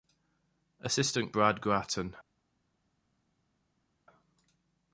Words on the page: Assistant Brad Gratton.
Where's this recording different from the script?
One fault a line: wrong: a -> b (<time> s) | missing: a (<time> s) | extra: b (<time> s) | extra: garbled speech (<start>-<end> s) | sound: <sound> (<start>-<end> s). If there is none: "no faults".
no faults